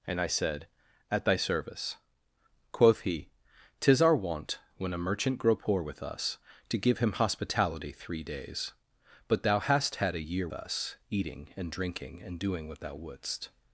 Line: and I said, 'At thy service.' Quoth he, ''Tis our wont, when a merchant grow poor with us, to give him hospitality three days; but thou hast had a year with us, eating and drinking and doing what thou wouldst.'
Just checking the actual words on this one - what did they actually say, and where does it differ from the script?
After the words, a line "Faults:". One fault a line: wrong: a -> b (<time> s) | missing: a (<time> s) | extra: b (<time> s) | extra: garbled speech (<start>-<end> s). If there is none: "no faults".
and I said, 'At thy service.' Quoth he, ''Tis our wont, when a merchant grow poor with us, to give him hospitality three days; but thou hast had a year us, eating and drinking and doing what thou wouldst.'
Faults:
missing: with (10.5 s)